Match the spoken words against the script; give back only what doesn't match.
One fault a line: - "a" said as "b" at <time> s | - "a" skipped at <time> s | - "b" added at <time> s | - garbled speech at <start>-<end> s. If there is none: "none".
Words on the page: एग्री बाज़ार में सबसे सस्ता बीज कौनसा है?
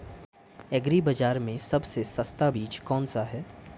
none